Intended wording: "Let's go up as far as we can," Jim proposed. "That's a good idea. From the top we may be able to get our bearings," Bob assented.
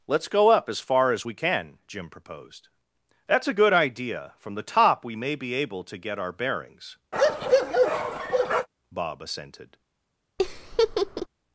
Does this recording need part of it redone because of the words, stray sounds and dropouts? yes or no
yes